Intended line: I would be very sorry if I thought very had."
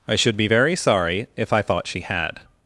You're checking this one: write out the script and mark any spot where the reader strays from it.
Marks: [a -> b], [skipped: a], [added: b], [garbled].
I [would -> should] be very sorry if I thought [very -> she] had."